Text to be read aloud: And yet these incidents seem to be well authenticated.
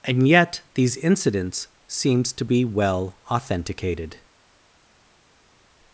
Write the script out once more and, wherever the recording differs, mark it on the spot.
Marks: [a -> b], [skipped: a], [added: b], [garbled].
And yet these incidents [seem -> seems] to be well authenticated.